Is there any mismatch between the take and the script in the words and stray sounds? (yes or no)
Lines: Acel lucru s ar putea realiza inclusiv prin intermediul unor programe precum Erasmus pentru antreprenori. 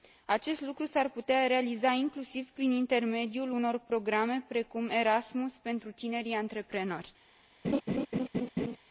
yes